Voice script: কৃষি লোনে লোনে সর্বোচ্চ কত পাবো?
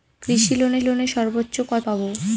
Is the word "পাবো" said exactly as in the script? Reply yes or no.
yes